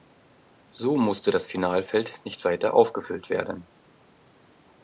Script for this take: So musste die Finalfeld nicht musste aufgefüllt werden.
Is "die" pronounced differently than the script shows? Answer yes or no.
yes